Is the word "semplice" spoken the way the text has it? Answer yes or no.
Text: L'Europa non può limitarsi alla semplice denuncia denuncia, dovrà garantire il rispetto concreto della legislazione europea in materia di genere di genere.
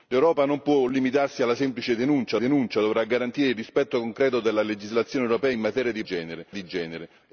yes